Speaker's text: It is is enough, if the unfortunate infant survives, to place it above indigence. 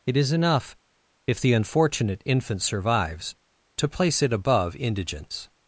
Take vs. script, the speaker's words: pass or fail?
fail